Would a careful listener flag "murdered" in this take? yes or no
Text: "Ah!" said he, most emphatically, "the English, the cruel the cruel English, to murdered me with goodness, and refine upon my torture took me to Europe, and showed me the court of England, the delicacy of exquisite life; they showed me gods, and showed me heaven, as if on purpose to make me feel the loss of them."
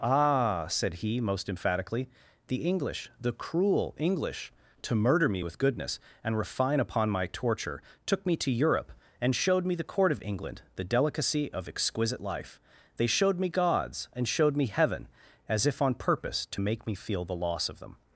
yes